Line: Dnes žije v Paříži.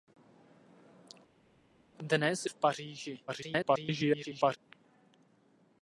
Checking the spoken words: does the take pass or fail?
fail